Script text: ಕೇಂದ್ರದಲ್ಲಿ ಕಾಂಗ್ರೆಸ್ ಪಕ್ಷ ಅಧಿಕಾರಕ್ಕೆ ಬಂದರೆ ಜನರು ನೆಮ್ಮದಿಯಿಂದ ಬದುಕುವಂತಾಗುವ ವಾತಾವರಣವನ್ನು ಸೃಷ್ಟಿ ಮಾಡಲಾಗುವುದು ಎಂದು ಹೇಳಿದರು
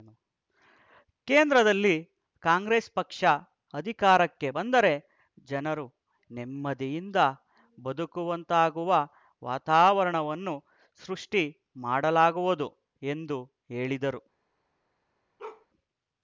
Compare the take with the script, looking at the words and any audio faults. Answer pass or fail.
fail